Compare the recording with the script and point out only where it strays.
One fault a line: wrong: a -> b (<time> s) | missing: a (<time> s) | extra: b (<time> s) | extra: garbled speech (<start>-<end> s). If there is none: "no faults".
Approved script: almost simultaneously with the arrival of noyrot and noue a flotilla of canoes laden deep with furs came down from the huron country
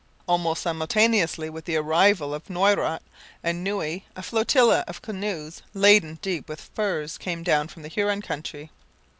no faults